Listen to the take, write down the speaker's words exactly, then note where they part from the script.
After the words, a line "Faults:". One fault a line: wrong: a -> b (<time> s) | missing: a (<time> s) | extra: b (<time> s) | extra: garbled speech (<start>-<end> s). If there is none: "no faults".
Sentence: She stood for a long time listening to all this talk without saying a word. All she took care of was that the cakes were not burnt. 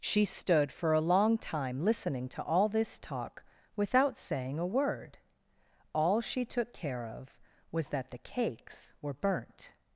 She stood for a long time listening to all this talk without saying a word. All she took care of was that the cakes were burnt.
Faults:
missing: not (9.1 s)